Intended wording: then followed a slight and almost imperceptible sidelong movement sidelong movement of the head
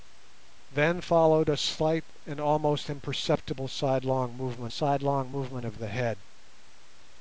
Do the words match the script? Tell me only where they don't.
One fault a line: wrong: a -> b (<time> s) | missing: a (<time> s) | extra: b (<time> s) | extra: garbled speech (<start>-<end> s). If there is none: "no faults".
no faults